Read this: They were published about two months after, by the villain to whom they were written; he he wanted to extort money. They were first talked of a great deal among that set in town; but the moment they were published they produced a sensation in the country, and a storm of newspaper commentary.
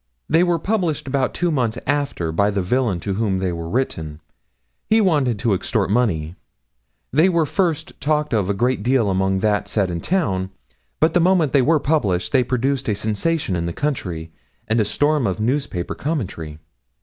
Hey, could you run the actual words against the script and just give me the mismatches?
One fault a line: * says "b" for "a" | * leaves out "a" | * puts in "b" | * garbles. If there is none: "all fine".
* leaves out "he"